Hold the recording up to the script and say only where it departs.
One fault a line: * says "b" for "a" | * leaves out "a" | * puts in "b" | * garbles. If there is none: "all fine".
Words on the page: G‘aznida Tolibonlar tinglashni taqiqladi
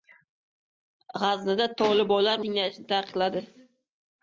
all fine